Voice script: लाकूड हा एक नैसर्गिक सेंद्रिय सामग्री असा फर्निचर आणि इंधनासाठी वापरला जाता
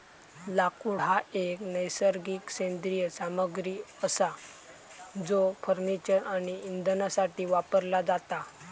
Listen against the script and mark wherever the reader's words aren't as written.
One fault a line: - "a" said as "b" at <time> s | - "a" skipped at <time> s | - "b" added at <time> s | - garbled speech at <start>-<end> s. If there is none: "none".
- "जो" added at 5.2 s